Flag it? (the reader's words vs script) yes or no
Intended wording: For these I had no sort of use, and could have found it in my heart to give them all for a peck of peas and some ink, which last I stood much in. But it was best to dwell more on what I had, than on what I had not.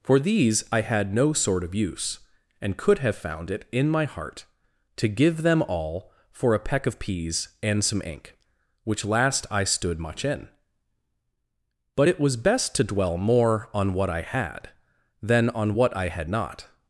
no